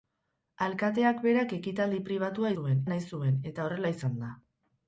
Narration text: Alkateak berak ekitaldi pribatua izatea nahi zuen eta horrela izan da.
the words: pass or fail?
fail